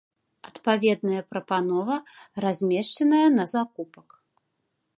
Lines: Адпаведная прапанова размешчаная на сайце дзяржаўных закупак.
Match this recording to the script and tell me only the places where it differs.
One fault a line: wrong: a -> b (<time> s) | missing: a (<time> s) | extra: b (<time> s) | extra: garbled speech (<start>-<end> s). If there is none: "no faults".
missing: сайце дзяржаўных (3.5 s)